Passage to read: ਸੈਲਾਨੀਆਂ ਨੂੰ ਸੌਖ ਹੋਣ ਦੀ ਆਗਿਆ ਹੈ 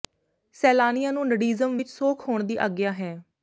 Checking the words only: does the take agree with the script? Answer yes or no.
no